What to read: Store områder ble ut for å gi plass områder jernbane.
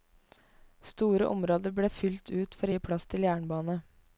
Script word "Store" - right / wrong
right